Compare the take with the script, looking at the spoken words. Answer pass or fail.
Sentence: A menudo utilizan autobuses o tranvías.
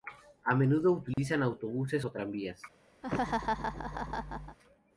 pass